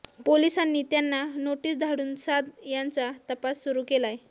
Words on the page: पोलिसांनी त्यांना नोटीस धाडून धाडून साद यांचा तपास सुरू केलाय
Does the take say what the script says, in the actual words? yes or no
no